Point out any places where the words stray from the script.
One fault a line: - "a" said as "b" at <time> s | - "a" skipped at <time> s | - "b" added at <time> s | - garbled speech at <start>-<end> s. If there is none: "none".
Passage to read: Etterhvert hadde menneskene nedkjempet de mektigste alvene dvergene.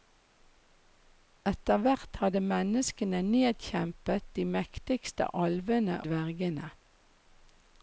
none